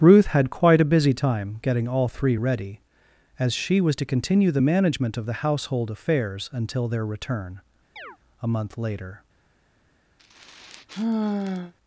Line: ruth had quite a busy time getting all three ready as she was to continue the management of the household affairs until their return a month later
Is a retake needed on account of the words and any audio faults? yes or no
yes